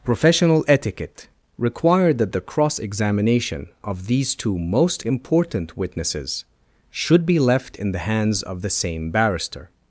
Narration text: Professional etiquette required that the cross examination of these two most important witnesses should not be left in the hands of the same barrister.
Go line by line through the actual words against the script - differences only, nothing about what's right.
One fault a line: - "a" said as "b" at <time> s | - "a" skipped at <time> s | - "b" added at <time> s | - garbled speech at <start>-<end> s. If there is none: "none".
- "not" skipped at 7.2 s